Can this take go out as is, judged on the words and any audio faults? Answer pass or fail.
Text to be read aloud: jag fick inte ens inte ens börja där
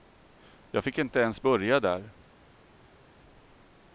fail